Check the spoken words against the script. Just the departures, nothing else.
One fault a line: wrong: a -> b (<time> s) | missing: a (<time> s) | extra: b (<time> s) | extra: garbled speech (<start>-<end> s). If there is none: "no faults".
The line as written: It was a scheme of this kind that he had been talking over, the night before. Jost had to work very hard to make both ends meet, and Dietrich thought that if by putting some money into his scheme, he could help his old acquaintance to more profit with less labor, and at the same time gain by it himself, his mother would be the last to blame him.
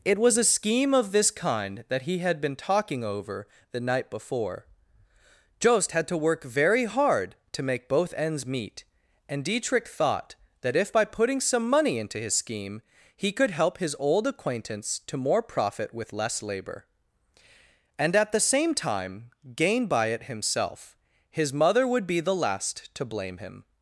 no faults